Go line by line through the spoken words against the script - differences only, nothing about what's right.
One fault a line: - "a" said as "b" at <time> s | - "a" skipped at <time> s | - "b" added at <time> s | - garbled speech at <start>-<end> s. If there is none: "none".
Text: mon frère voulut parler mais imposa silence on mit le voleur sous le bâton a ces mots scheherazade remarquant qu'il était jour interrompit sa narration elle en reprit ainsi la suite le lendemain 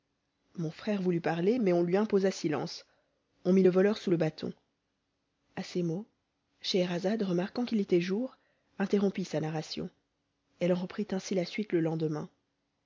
- "on lui" added at 1.7 s